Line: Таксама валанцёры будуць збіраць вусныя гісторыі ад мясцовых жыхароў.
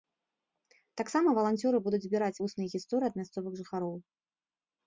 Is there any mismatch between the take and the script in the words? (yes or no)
no